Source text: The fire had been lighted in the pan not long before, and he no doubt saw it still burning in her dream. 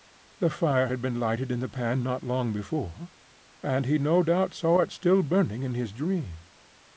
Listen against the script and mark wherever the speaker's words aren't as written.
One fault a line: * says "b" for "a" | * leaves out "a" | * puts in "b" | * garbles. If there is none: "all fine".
* says "his" for "her"